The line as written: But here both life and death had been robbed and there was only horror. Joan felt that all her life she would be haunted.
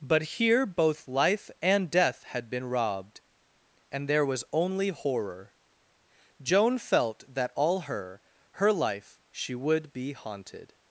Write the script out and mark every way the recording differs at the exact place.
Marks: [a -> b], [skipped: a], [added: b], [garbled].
But here both life and death had been robbed and there was only horror. Joan felt that all her [added: her] life she would be haunted.